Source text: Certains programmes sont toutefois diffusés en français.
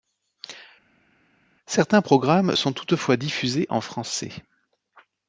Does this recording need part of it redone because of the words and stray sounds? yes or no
no